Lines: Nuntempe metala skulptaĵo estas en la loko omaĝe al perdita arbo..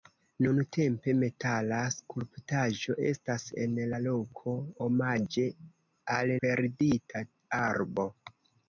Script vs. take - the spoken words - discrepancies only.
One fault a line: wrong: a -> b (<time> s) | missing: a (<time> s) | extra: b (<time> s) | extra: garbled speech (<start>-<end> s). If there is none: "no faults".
no faults